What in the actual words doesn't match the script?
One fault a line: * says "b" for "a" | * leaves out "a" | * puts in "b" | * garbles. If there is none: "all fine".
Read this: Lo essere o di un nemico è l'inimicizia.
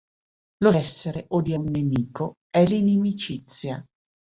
all fine